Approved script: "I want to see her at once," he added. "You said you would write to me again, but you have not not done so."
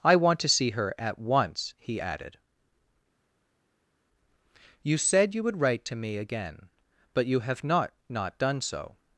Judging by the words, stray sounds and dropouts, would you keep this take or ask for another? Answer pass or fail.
pass